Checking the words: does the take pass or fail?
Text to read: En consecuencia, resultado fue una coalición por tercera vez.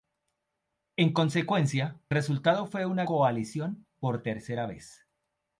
pass